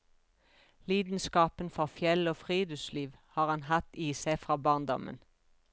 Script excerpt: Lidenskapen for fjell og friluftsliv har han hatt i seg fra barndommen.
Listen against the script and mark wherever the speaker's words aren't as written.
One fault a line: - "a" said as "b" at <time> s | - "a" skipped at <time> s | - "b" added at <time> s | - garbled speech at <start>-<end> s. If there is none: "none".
none